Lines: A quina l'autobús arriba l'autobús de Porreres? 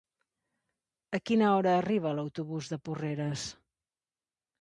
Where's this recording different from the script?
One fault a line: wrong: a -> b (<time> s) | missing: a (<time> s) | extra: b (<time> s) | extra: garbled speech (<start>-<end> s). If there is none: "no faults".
wrong: l'autobús -> hora (1.6 s)